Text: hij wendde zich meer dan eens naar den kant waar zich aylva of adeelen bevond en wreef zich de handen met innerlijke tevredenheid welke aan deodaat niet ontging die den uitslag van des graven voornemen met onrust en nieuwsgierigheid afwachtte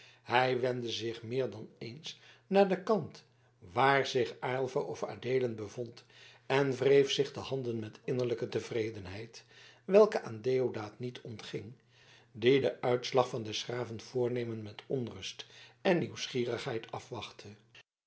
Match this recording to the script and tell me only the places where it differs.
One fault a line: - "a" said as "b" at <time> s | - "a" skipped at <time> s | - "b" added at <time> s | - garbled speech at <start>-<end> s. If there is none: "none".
none